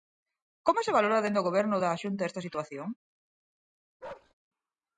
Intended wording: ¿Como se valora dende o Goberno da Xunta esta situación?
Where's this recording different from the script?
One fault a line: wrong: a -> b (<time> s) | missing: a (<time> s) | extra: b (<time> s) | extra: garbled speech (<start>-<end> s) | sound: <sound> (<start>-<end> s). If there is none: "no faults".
sound: bark (4.0-4.3 s)